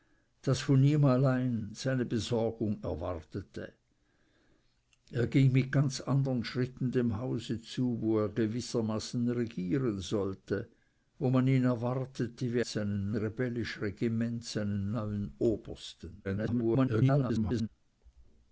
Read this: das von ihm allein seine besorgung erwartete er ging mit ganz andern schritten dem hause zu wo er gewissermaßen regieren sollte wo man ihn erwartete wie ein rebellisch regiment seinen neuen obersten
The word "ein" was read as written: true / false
false